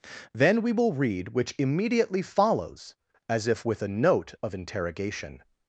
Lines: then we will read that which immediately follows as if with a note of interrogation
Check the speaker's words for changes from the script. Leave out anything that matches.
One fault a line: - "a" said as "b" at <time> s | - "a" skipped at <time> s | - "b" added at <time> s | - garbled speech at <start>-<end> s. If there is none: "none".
- "that" skipped at 1.3 s